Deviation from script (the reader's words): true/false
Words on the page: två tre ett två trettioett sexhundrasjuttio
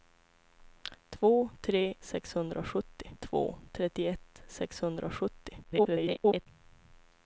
true